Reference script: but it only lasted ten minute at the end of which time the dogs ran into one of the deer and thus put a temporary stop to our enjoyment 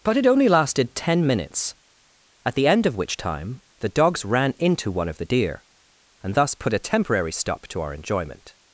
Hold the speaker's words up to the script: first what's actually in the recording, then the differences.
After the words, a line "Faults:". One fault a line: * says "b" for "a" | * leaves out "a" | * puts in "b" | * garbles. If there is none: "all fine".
but it only lasted ten minutes at the end of which time the dogs ran into one of the deer and thus put a temporary stop to our enjoyment
Faults:
* says "minutes" for "minute"